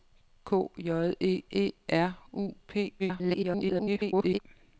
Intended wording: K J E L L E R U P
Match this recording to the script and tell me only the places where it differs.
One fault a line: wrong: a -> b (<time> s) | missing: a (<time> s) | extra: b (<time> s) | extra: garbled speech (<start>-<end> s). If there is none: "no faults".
missing: L L (1.4 s)
extra: garbled speech (3.0-4.4 s)